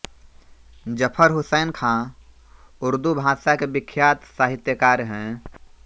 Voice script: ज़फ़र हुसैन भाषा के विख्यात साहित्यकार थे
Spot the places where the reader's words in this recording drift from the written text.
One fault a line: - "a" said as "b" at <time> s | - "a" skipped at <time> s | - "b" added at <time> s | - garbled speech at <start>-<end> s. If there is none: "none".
- "ख़ाँ उर्दू" added at 1.7 s
- "थे" said as "हैं" at 5.1 s